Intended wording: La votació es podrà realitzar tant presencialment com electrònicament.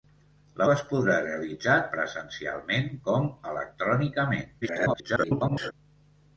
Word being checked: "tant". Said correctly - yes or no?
no